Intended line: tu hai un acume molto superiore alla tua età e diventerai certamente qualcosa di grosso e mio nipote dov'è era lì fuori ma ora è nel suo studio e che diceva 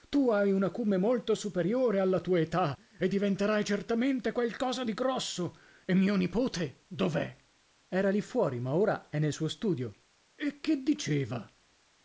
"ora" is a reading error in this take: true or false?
false